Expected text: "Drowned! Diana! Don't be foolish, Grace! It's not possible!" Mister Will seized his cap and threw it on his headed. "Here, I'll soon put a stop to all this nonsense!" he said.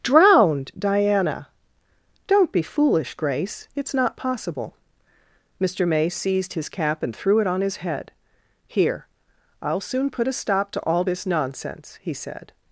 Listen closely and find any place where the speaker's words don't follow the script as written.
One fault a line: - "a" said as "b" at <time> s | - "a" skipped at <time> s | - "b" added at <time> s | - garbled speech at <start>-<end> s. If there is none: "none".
- "Will" said as "May" at 5.9 s
- "headed" said as "head" at 7.8 s